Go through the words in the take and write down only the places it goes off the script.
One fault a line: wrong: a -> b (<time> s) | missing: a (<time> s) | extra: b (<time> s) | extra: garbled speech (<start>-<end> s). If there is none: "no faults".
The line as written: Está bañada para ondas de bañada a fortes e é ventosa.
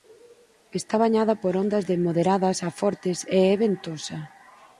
wrong: para -> por (1.4 s)
wrong: bañada -> moderadas (2.1 s)